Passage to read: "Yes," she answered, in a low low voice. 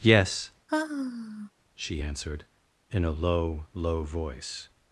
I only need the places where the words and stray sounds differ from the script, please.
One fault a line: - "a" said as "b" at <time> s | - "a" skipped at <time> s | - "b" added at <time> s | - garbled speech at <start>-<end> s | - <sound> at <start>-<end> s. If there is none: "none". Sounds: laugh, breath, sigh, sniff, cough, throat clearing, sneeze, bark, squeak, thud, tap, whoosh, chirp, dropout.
- sigh at 0.7-1.5 s